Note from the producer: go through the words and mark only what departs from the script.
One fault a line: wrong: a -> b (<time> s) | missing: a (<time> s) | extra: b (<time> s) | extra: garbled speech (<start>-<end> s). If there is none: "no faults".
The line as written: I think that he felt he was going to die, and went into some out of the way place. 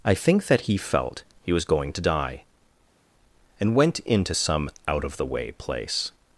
no faults